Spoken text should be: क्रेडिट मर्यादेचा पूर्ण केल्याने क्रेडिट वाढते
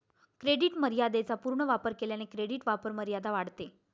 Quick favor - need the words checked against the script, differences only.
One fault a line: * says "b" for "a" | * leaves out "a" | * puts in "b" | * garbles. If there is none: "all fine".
* puts in "वापर"
* puts in "वापरमर्यादा"